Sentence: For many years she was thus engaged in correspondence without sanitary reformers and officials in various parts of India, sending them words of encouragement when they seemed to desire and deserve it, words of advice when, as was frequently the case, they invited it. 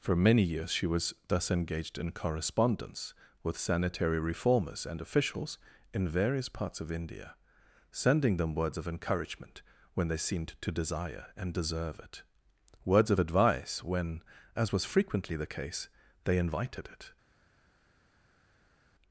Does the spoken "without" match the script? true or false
false